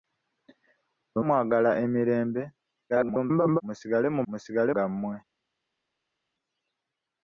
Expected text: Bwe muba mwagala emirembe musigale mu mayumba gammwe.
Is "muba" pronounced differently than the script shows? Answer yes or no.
yes